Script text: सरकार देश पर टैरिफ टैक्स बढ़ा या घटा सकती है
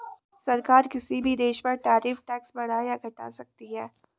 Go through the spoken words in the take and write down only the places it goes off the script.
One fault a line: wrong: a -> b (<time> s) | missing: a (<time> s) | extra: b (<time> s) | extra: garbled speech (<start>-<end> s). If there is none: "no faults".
extra: किसी भी (0.9 s)